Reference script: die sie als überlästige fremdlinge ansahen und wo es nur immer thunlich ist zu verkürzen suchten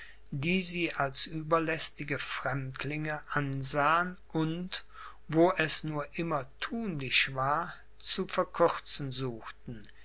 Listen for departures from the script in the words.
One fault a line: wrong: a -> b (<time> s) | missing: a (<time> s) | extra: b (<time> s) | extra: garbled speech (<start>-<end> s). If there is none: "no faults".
wrong: ist -> war (7.3 s)